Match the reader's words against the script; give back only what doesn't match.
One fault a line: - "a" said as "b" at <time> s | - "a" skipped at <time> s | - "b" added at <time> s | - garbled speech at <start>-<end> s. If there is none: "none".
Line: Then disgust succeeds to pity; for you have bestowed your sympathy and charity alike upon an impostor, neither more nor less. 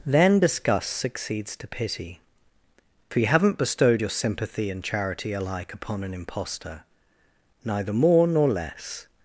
- "have" said as "haven't" at 3.3 s